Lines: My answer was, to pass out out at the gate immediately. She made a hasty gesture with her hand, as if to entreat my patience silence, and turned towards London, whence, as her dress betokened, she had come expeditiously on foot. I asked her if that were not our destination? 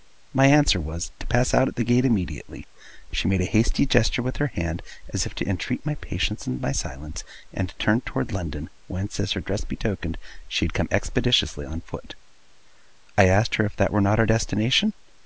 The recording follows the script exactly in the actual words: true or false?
false